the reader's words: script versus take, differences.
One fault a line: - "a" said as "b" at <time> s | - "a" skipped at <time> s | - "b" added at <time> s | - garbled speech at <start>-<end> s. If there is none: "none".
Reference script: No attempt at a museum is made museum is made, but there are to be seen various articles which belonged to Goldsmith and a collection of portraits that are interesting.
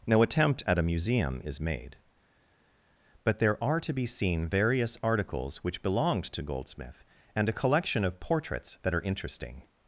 - "museum is made" skipped at 2.0 s